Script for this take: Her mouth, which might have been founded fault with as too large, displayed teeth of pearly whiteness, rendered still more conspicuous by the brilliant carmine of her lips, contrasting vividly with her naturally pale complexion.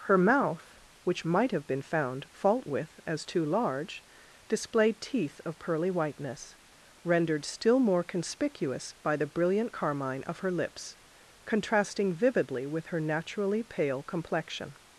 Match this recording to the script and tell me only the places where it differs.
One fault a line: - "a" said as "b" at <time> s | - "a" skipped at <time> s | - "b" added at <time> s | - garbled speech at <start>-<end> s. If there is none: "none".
- "founded" said as "found" at 1.8 s